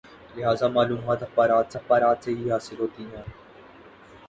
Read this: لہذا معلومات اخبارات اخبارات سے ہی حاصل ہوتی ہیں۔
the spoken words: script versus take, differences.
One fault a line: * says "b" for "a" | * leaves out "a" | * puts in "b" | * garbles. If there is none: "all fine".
all fine